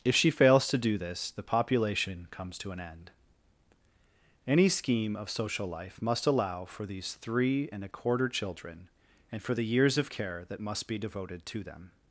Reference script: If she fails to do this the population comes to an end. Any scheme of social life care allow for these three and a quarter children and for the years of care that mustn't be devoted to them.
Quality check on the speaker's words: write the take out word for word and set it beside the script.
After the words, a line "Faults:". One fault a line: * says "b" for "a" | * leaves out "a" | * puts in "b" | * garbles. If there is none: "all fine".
If she fails to do this the population comes to an end. Any scheme of social life must allow for these three and a quarter children and for the years of care that must be devoted to them.
Faults:
* says "must" for "care"
* says "must" for "mustn't"